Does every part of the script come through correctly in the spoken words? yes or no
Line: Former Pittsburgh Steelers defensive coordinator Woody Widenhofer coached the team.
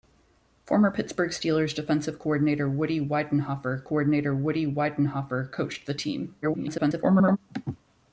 no